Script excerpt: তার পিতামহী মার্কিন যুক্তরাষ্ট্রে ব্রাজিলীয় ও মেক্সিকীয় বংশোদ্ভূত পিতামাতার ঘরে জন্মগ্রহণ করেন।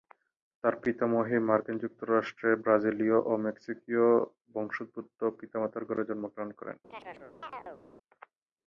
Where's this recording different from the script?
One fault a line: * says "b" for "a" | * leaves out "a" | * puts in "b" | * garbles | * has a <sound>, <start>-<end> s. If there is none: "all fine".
* has a chirp, 6.9-7.8 s